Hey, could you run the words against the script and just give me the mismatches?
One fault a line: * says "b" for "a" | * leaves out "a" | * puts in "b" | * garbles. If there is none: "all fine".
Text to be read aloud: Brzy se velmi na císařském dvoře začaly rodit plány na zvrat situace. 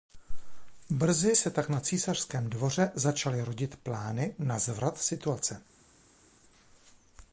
* says "tak" for "velmi"